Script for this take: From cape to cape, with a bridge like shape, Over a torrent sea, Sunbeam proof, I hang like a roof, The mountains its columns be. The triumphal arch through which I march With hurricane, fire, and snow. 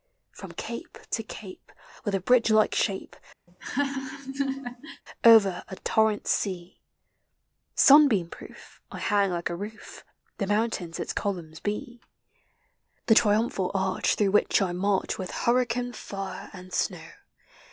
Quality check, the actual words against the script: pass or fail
pass